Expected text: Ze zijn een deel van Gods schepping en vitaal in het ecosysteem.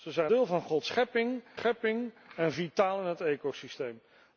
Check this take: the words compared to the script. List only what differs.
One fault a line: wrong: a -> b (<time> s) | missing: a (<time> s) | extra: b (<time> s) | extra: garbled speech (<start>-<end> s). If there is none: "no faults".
missing: een (0.3 s)
extra: schepping (1.5 s)